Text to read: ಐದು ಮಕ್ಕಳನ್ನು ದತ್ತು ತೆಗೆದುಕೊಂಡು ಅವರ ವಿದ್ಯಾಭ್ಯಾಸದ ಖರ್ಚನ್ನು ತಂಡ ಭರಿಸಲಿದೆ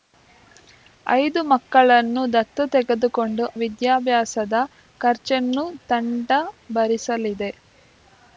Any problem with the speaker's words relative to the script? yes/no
yes